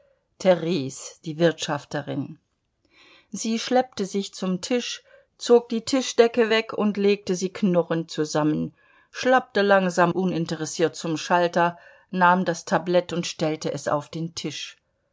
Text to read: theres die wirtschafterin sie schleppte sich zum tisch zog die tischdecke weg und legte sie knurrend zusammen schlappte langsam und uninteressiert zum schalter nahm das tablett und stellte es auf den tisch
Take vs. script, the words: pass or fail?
fail